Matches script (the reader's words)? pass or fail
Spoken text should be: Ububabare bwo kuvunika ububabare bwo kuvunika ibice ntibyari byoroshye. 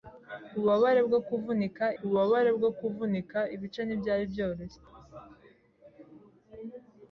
pass